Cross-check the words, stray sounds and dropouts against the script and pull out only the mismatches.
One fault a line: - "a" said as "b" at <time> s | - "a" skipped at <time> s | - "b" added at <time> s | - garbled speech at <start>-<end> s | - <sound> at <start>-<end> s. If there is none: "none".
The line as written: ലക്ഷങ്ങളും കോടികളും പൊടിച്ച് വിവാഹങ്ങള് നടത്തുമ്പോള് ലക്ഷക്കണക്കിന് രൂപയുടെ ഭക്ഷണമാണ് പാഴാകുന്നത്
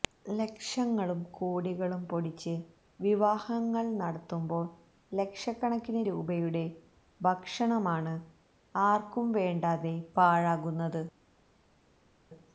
- "ആര്ക്കും വേണ്ടാതെ" added at 8.8 s